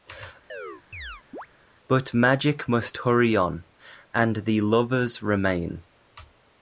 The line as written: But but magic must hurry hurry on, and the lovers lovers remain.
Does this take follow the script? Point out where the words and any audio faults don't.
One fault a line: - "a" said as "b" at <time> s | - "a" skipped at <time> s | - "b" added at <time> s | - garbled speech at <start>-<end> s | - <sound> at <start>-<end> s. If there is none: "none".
- chirp at 0.5-1.5 s
- "but" skipped at 2.1 s
- "hurry" skipped at 3.4 s
- "lovers" skipped at 5.2 s